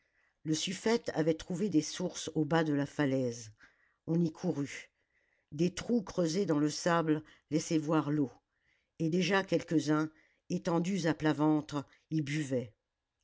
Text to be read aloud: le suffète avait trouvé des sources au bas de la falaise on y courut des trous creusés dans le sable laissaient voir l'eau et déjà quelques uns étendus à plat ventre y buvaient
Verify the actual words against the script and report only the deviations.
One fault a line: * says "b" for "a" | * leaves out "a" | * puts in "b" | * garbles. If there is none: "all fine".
all fine